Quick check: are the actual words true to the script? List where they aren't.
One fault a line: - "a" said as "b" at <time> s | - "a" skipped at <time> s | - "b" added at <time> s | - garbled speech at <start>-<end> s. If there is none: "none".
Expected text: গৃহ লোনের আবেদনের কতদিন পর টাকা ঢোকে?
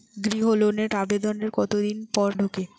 - "টাকা" skipped at 2.3 s